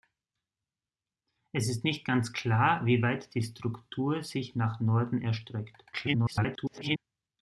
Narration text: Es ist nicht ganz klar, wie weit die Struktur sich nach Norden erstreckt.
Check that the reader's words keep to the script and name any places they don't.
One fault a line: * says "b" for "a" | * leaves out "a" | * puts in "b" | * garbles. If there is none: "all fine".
* garbles